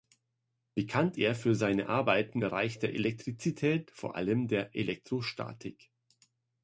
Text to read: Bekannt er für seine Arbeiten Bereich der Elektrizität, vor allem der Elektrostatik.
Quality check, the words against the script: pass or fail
pass